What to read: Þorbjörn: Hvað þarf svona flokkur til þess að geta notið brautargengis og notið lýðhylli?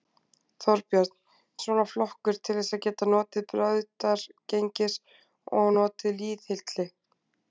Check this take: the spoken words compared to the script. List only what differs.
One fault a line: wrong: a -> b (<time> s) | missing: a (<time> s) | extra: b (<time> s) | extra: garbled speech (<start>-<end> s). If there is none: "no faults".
missing: Hvað þarf (1.1 s)